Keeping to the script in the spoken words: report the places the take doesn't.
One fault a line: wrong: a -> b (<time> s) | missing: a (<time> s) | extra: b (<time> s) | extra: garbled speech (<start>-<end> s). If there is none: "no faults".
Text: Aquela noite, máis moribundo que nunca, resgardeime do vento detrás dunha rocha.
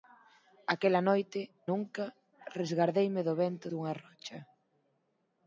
missing: máis moribundo que (1.4 s)
missing: detrás (3.7 s)